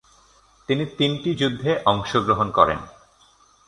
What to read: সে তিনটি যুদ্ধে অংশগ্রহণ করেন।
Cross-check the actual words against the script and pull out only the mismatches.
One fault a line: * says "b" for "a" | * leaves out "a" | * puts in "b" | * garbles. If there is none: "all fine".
* says "তিনি" for "সে"